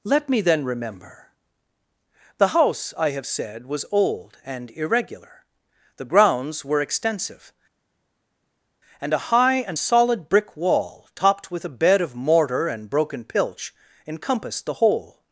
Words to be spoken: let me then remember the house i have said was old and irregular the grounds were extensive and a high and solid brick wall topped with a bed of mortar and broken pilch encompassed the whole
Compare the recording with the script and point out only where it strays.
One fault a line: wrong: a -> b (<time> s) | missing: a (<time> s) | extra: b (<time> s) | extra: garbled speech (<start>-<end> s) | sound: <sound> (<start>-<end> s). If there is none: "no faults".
no faults